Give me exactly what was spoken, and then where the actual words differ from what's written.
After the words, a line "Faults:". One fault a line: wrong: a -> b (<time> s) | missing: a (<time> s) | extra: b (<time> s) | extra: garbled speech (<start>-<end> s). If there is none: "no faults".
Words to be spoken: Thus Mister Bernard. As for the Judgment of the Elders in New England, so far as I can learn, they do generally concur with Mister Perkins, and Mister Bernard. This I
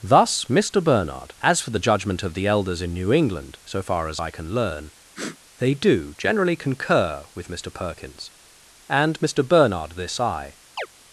Thus Mister Bernard. As for the Judgment of the Elders in New England, so far as I can learn, they do generally concur with Mister Perkins, and Mister Bernard. This I
Faults:
no faults